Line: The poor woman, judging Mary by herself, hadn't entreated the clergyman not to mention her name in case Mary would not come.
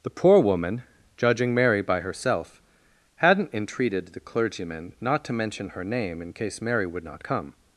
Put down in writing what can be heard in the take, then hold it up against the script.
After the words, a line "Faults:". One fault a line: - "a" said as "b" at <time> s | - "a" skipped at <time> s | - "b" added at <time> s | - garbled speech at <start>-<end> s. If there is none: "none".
The poor woman, judging Mary by herself, hadn't entreated the clergyman not to mention her name in case Mary would not come.
Faults:
none